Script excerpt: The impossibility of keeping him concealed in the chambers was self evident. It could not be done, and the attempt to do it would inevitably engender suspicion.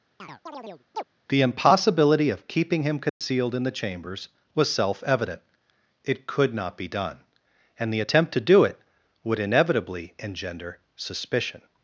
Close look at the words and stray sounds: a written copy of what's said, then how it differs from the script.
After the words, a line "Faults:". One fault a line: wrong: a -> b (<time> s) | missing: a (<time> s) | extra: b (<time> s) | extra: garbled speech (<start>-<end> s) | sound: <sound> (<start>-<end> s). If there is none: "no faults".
The impossibility of keeping him concealed in the chambers was self evident. It could not be done, and the attempt to do it would inevitably engender suspicion.
Faults:
sound: chirp (0.2-1.0 s)
sound: dropout (3.1-3.2 s)